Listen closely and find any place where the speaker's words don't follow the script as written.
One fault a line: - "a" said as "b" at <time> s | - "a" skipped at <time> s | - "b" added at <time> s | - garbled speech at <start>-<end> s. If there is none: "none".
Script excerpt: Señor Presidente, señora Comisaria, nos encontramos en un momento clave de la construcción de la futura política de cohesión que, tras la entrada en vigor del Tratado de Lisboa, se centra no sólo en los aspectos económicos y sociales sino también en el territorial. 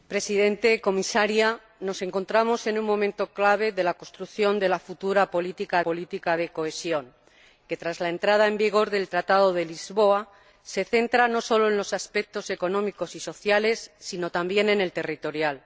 - "política" added at 5.9 s